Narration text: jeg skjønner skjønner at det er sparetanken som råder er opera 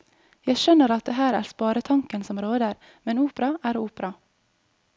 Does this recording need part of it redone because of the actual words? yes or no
yes